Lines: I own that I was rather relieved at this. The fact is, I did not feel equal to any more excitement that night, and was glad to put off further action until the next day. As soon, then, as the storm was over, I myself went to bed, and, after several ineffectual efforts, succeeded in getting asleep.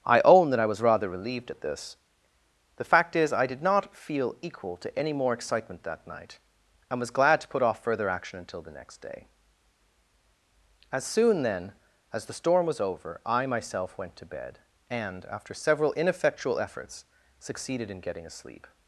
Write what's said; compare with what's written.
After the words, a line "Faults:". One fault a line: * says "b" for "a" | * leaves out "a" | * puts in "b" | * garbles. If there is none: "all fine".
I own that I was rather relieved at this. The fact is, I did not feel equal to any more excitement that night, and was glad to put off further action until the next day. As soon, then, as the storm was over, I myself went to bed, and, after several ineffectual efforts, succeeded in getting asleep.
Faults:
all fine